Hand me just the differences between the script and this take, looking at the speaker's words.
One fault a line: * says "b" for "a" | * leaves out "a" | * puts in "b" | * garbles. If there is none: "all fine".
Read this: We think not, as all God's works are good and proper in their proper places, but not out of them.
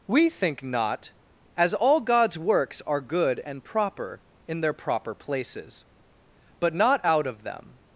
all fine